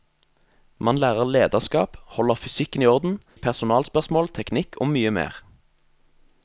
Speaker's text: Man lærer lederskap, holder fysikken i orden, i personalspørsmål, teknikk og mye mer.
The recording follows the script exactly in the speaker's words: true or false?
true